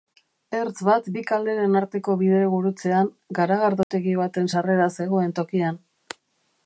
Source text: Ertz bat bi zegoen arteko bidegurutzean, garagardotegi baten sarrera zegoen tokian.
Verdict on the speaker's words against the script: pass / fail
fail